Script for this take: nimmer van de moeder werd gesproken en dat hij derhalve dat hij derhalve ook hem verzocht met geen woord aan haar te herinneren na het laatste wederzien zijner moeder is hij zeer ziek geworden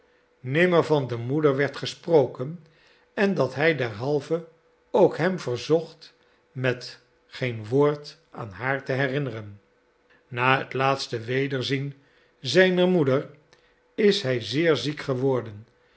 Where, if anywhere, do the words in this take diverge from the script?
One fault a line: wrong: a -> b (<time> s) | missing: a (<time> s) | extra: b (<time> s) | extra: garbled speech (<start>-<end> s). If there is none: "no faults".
missing: dat hij derhalve (4.5 s)